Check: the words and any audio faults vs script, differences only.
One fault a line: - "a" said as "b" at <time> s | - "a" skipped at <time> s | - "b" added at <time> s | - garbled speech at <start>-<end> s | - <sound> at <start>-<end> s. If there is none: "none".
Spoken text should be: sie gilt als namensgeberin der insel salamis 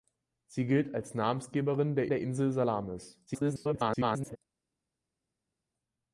- "der" added at 2.1 s
- garbled speech at 3.3-4.4 s